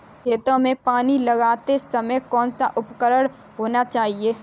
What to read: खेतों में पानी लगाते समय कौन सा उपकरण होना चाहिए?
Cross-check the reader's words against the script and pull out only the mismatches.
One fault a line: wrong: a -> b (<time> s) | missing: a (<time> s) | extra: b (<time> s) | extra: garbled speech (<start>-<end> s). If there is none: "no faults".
no faults